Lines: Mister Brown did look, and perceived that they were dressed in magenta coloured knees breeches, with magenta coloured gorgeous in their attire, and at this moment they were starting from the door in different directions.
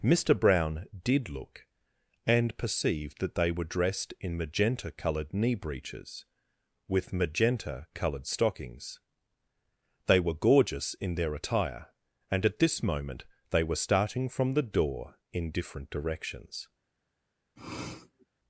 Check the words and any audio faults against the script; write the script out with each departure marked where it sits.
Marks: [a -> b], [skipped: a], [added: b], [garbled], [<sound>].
Mister Brown did look, and perceived that they were dressed in magenta coloured [knees -> knee] breeches, with magenta coloured [added: stockings They were] gorgeous in their attire, and at this moment they were starting from the door in different directions. [sniff]